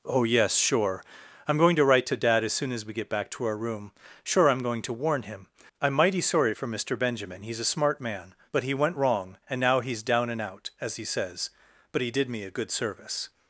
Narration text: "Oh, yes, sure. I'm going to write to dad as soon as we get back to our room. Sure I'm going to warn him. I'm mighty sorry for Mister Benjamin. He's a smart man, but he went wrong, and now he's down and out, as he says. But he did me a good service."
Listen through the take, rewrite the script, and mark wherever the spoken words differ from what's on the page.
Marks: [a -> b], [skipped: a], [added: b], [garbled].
"Oh, yes, sure. I'm going to write to dad as soon as we get back to our room. Sure I'm going to warn him. I'm mighty sorry for Mister Benjamin. He's a smart man, but he went wrong, and now he's down and out, as he says. But he did me a good service."